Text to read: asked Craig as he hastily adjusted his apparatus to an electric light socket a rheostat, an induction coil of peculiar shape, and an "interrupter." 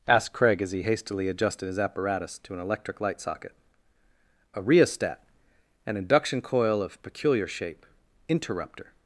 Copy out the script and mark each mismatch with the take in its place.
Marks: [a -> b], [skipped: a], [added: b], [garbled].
asked Craig as he hastily adjusted his apparatus to an electric light socket a rheostat, an induction coil of peculiar shape, [skipped: and an] "interrupter."